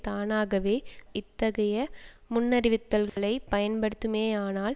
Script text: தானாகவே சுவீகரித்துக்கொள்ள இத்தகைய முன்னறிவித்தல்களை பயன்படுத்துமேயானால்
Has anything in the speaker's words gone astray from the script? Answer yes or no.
yes